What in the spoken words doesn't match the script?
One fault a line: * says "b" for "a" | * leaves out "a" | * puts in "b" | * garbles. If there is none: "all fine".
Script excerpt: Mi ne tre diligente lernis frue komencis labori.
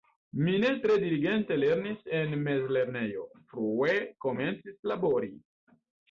* puts in "en mezlernejo"